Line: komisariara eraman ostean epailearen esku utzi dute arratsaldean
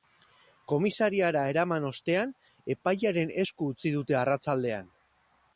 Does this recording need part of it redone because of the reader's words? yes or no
no